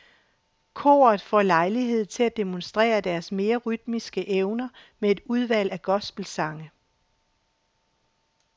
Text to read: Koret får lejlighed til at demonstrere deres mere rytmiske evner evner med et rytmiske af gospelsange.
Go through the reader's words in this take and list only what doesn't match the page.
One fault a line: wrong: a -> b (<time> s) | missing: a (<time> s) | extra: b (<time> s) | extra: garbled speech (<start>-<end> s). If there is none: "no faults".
missing: evner (4.7 s)
wrong: rytmiske -> udvalg (5.2 s)